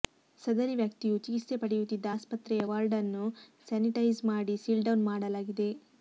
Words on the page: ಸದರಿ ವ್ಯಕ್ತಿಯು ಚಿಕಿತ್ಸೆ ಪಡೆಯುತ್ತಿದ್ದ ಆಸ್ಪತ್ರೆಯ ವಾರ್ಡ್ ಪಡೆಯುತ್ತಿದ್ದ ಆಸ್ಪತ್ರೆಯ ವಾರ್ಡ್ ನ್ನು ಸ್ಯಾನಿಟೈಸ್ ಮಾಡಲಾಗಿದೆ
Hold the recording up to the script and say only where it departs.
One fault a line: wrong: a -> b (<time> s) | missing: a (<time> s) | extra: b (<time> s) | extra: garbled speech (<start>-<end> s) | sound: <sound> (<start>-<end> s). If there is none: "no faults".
wrong: ಪಡೆಯುತ್ತಿದ್ದ ಆಸ್ಪತ್ರೆಯ ವಾರ್ಡ್ ನ್ನು ಸ್ಯಾನಿಟೈಸ್ -> ನ್ನು ಸ್ಯಾನಿಟೈಸ್ ಮಾಡಿ ಸೀಲ್ಡೌನ್ (3.0 s)